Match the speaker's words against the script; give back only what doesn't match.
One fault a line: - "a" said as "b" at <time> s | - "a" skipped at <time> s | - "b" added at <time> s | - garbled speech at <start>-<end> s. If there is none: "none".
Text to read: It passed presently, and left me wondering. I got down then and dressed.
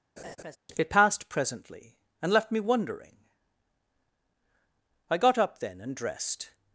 - "down" said as "up" at 5.4 s